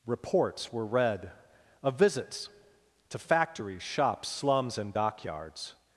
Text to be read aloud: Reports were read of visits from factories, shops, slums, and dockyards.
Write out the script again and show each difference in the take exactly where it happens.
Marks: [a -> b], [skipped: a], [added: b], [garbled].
Reports were read of visits [from -> to] factories, shops, slums, and dockyards.